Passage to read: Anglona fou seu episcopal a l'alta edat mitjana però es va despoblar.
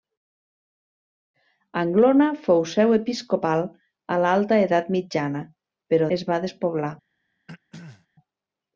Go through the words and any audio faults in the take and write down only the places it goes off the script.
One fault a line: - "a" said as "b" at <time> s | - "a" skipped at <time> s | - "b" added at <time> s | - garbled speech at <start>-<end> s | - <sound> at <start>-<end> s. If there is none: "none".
- throat clearing at 7.5-8.1 s